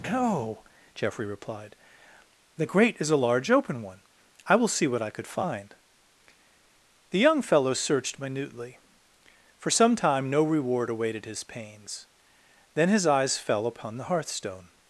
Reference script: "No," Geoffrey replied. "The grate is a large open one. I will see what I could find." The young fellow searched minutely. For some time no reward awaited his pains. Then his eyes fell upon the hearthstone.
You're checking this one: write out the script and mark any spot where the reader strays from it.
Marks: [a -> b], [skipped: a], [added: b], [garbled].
"No," Geoffrey replied. "The grate is a large open one. I will see what I could find." The young fellow searched minutely. For some time no reward awaited his pains. Then his eyes fell upon the hearthstone.